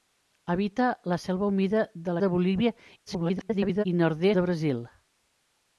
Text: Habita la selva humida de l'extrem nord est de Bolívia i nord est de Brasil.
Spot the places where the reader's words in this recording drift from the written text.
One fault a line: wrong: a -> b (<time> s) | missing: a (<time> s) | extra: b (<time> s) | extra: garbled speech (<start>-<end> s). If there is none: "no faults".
missing: l'extrem nord est (2.1 s)
extra: garbled speech (3.1-3.8 s)
missing: est (4.3 s)